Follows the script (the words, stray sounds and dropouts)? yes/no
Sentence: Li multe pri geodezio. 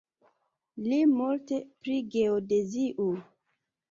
yes